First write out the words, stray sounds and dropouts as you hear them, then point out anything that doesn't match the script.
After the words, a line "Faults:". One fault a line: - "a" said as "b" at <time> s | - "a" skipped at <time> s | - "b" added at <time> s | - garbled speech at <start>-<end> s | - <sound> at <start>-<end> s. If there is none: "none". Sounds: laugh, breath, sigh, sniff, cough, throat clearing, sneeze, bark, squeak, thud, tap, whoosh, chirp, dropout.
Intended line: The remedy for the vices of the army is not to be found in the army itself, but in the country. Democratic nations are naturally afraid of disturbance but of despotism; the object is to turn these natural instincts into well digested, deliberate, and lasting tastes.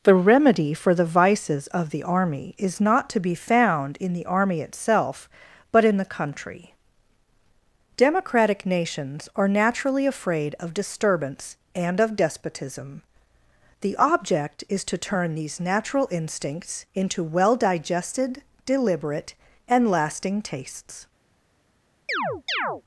The remedy for the vices of the army is not to be found in the army itself, but in the country. Democratic nations are naturally afraid of disturbance and of despotism; the object is to turn these natural instincts into well digested, deliberate, and lasting tastes.
Faults:
- "but" said as "and" at 11.8 s
- chirp at 22.1-22.8 s